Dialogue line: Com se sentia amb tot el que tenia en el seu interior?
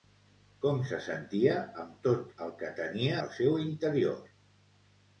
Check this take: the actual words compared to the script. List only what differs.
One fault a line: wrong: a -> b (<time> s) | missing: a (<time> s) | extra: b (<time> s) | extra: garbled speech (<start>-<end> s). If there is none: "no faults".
missing: en (3.2 s)